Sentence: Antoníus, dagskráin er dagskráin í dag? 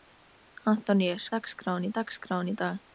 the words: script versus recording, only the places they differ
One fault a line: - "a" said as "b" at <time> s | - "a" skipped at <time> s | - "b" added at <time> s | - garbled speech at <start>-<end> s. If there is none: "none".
none